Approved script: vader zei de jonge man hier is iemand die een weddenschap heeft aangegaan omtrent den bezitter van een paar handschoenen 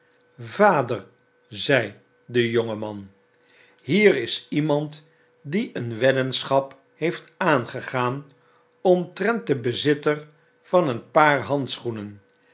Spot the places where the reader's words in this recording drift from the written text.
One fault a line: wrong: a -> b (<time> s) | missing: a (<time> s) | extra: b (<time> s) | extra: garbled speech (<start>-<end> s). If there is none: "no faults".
no faults